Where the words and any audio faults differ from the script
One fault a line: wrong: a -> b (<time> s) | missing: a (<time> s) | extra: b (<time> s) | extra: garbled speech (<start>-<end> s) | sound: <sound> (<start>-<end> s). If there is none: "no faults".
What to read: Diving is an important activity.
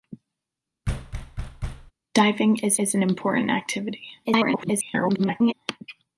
sound: thud (0.9-1.9 s)
extra: is (2.7 s)
extra: garbled speech (4.2-5.5 s)